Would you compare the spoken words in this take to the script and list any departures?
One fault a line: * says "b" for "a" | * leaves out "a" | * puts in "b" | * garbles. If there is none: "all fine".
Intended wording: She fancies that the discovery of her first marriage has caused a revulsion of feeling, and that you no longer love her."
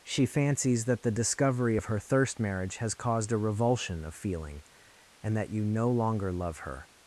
* says "thirst" for "first"